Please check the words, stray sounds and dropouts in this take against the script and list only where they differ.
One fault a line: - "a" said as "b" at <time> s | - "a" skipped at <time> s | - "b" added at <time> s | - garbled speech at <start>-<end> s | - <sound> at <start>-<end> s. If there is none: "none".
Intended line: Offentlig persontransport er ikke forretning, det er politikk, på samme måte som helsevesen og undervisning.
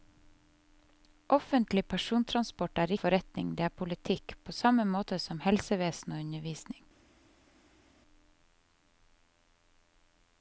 - "ikke" skipped at 2.9 s